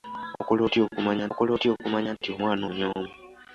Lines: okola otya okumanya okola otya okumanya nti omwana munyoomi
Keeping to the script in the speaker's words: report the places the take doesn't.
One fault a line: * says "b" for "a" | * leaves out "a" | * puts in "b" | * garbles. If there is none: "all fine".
all fine